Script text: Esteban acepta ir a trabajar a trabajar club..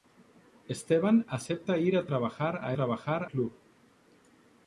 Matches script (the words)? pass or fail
pass